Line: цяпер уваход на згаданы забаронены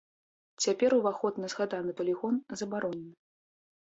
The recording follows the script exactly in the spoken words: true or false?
false